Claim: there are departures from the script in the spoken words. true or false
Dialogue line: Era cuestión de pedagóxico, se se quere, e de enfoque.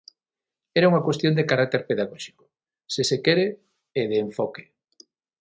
true